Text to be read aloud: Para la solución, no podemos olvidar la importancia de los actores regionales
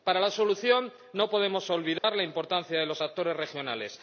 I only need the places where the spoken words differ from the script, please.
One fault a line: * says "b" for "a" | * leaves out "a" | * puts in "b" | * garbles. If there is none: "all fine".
all fine